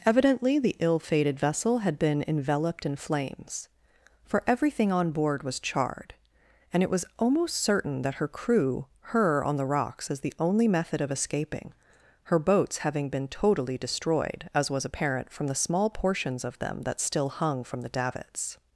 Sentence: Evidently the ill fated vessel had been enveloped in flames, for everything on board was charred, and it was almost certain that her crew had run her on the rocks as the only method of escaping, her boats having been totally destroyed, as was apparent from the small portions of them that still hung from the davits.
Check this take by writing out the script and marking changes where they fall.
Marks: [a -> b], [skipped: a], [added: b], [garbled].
Evidently the ill fated vessel had been enveloped in flames, for everything on board was charred, and it was almost certain that her crew [skipped: had run] her on the rocks as the only method of escaping, her boats having been totally destroyed, as was apparent from the small portions of them that still hung from the davits.